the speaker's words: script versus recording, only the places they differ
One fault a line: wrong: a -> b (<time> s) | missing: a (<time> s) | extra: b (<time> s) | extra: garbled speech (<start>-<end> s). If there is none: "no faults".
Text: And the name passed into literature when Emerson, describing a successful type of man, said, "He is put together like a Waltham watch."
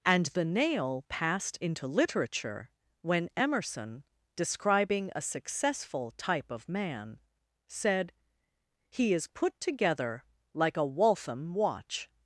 wrong: name -> nail (0.5 s)